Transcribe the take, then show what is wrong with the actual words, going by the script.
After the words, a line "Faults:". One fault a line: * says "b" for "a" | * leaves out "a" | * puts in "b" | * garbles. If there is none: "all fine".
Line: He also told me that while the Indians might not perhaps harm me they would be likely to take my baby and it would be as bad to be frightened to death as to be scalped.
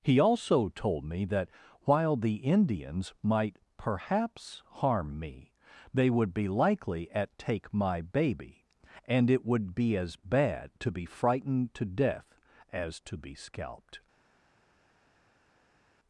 He also told me that while the Indians might perhaps harm me they would be likely at take my baby and it would be as bad to be frightened to death as to be scalped.
Faults:
* leaves out "not"
* says "at" for "to"